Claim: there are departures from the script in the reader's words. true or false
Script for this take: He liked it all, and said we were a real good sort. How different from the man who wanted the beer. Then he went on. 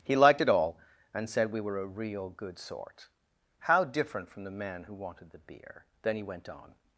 false